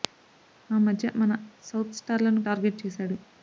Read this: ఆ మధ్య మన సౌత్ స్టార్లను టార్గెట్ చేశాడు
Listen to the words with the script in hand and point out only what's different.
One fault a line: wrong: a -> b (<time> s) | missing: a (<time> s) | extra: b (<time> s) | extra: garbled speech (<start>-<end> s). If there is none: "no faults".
no faults